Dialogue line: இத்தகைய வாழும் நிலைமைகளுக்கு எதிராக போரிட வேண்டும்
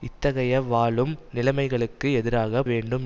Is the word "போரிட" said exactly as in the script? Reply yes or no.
no